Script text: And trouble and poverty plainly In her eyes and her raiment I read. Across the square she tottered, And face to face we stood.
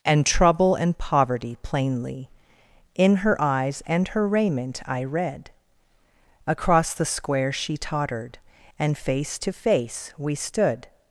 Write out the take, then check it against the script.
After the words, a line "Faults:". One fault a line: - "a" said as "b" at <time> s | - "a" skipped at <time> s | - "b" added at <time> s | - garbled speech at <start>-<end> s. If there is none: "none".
And trouble and poverty plainly In her eyes and her raiment I read. Across the square she tottered, And face to face we stood.
Faults:
none